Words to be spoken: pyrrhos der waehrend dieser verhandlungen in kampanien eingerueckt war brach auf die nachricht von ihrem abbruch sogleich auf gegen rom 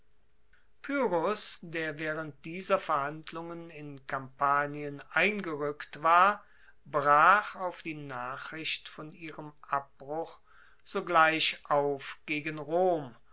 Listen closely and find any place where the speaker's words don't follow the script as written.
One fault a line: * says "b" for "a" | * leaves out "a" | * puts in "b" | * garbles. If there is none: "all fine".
all fine